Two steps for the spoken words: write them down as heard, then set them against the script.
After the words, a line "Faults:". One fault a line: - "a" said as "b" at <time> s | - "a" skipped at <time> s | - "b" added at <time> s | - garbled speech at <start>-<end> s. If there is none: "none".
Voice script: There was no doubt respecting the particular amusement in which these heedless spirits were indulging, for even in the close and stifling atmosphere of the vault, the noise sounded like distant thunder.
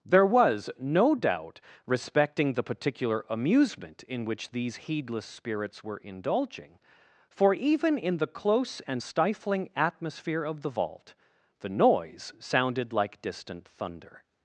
There was no doubt respecting the particular amusement in which these heedless spirits were indulging, for even in the close and stifling atmosphere of the vault, the noise sounded like distant thunder.
Faults:
none